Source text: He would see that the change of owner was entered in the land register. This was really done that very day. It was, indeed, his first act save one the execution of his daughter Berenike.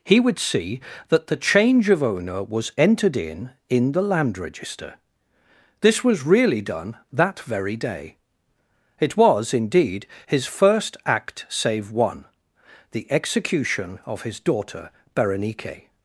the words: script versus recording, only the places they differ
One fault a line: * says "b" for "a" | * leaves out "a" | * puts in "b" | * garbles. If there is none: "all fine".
* puts in "in"